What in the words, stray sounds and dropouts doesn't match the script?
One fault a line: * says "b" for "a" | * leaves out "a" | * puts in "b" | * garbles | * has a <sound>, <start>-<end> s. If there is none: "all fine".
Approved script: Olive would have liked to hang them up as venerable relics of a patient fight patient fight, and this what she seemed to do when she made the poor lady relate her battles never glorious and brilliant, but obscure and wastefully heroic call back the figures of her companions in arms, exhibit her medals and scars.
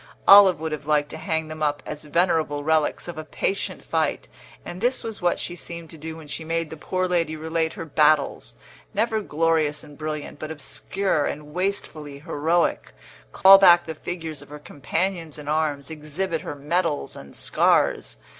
* leaves out "patient fight"
* puts in "was"
* has a dropout, 13.4-13.5 s